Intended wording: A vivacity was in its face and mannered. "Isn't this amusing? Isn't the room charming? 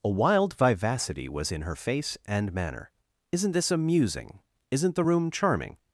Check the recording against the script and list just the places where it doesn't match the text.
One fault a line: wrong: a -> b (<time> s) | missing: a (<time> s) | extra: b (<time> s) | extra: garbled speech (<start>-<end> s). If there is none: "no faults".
extra: wild (0.1 s)
wrong: its -> her (1.6 s)
wrong: mannered -> manner (2.5 s)